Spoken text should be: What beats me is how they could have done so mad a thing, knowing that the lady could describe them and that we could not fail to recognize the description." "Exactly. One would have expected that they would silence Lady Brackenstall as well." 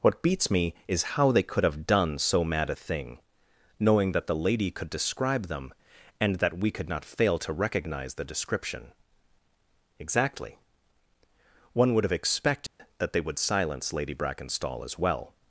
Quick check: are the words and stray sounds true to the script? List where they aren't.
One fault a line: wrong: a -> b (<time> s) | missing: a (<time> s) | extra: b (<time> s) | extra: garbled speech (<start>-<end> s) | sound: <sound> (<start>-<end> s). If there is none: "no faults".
sound: dropout (12.7-12.8 s)